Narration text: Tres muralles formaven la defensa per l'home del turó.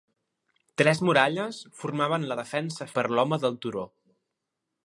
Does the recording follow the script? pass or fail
pass